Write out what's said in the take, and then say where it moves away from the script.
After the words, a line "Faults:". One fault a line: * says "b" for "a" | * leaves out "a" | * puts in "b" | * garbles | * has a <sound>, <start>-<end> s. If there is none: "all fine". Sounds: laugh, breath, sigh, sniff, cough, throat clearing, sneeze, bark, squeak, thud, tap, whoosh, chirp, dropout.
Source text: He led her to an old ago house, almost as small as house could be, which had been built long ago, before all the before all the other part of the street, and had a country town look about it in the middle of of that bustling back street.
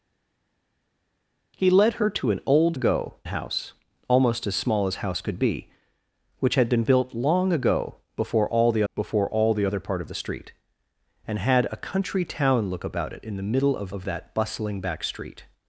He led her to an old ago house, almost as small as house could be, which had been built long ago, before all the before all the other part of the street, and had a country town look about it in the middle of of that bustling back street.
Faults:
all fine